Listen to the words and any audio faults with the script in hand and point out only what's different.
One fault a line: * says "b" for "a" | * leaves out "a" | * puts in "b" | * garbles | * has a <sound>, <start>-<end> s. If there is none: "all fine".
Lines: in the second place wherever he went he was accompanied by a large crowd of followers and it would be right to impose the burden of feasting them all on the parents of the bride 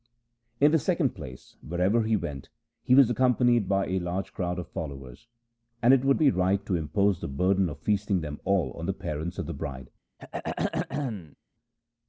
* has a throat clearing, 10.2-11.4 s